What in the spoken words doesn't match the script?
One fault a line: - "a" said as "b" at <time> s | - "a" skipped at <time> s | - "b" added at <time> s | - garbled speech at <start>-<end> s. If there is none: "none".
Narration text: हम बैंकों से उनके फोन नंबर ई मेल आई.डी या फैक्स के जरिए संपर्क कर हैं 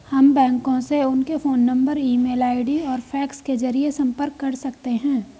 - "या" said as "और" at 2.8 s
- "सकते" added at 4.6 s